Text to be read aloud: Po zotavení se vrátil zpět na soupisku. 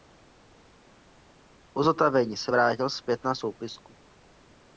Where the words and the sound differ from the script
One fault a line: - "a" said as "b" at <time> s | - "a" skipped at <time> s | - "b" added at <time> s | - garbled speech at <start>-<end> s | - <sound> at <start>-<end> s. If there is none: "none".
none